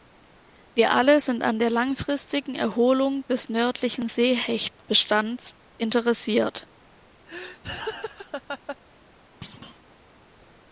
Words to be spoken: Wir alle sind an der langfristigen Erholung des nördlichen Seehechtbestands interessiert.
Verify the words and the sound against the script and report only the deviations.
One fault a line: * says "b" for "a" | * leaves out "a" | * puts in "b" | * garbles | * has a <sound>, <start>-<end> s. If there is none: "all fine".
* has a laugh, 7.3-8.8 s
* has a thud, 9.4-9.8 s